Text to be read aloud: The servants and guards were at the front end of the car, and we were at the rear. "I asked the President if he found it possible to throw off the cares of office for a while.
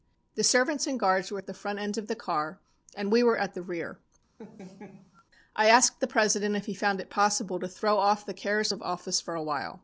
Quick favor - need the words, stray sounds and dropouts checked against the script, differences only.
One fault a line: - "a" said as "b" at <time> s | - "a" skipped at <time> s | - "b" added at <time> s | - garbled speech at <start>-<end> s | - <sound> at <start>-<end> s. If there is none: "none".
- laugh at 4.4-5.2 s